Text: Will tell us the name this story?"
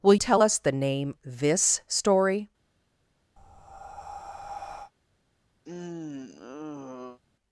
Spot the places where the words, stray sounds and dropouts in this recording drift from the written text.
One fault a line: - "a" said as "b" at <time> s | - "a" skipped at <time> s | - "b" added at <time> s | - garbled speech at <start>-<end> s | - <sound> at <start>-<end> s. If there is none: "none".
- breath at 3.4-4.9 s
- sigh at 5.6-7.2 s